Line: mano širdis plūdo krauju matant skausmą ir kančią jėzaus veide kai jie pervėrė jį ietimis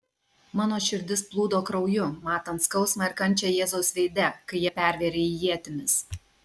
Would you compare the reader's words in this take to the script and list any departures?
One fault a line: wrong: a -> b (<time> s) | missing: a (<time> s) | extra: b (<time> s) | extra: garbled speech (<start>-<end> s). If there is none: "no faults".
no faults